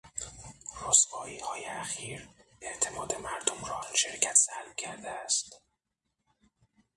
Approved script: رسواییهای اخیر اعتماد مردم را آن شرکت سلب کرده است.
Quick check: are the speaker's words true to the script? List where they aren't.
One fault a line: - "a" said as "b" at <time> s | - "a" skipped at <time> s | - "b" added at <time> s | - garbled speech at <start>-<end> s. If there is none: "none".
none